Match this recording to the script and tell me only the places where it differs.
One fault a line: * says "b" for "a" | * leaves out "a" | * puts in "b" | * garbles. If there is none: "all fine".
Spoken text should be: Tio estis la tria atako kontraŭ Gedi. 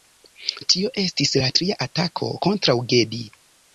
all fine